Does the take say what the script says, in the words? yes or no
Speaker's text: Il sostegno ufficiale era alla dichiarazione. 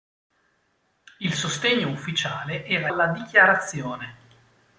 yes